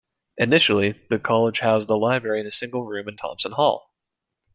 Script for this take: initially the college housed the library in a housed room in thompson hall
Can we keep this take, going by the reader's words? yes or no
no